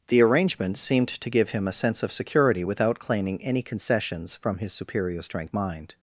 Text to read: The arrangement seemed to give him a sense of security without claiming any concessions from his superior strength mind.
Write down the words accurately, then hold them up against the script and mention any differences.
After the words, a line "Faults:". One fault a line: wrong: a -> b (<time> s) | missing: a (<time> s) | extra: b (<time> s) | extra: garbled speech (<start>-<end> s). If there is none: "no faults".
The arrangement seemed to give him a sense of security without claiming any concessions from his superior strength mind.
Faults:
no faults